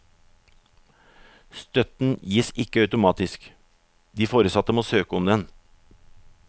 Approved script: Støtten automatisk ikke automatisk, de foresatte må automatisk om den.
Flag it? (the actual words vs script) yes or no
yes